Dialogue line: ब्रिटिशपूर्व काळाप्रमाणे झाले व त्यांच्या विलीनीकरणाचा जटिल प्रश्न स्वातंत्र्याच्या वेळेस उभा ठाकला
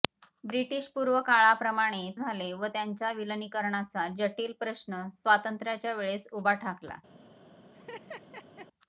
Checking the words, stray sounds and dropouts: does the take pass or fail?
fail